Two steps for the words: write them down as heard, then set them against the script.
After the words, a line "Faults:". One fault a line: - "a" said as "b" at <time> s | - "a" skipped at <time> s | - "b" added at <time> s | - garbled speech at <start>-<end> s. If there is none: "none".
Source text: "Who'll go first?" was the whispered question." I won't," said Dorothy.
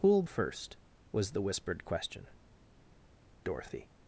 "Who'll first?" was the whispered question." Dorothy.
Faults:
- "go" skipped at 0.2 s
- "I won't said" skipped at 2.3 s